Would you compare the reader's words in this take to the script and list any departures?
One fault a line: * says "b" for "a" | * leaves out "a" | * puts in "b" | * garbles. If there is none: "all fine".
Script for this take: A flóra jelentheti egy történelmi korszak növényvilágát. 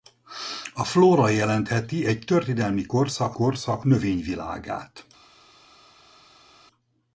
* puts in "korszak"